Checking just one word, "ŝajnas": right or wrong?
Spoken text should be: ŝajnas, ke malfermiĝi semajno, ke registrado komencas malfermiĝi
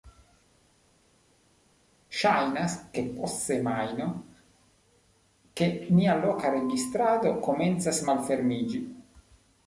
right